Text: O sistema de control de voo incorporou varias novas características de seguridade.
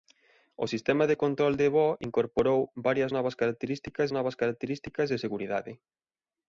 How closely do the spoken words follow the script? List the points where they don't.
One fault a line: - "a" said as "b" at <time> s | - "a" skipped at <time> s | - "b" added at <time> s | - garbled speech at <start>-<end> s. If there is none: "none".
- "novas características" added at 4.1 s